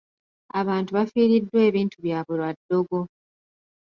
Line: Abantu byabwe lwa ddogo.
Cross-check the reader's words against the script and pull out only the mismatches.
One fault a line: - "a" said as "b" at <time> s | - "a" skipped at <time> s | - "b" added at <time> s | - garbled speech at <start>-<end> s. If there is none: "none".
- "bafiiriddwa ebintu" added at 1.0 s